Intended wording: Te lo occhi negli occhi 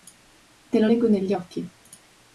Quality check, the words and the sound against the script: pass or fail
fail